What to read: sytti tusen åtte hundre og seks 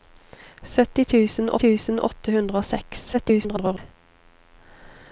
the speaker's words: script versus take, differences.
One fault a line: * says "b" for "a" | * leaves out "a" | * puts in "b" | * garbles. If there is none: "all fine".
* puts in "tusen"
* garbles